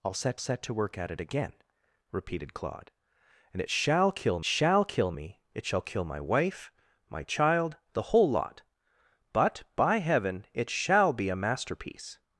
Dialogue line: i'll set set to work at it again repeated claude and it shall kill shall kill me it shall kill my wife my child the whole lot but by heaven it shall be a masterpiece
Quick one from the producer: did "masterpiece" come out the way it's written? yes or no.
yes